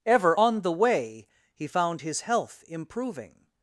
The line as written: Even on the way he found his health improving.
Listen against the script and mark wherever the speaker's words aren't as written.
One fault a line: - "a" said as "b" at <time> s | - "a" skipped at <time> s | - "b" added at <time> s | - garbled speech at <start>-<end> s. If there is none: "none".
- "Even" said as "Ever" at 0.1 s